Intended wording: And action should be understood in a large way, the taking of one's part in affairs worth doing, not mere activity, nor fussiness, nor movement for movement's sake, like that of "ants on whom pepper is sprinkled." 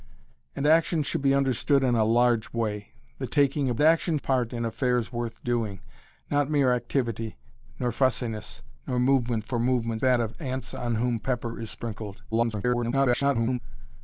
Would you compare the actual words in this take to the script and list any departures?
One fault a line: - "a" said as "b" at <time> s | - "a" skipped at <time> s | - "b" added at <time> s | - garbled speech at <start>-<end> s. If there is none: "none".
- "one's" said as "action" at 3.8 s
- "sake like" skipped at 10.0 s
- garbled speech at 12.3-13.6 s